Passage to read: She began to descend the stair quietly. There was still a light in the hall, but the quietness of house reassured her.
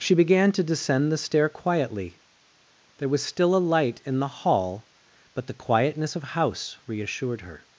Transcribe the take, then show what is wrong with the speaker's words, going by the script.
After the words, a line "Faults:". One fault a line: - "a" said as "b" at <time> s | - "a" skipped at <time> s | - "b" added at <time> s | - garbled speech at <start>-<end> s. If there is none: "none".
She began to descend the stair quietly. There was still a light in the hall, but the quietness of house reassured her.
Faults:
none